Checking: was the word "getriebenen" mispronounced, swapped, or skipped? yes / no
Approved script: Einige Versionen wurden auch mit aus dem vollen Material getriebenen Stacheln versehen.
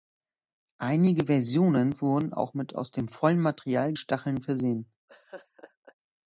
yes